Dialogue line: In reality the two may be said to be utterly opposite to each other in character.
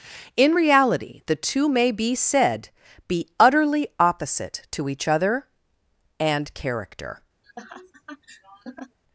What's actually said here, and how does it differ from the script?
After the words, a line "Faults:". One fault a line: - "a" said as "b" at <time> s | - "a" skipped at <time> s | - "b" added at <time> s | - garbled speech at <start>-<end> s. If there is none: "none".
In reality the two may be said be utterly opposite to each other and character.
Faults:
- "to" skipped at 2.7 s
- "in" said as "and" at 6.2 s